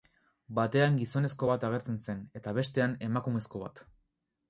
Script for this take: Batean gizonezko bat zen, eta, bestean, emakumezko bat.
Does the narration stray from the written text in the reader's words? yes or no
yes